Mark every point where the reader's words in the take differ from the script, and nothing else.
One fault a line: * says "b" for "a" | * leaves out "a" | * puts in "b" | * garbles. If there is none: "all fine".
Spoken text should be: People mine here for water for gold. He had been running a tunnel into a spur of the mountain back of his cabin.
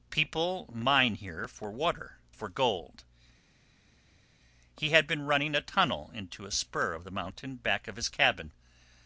all fine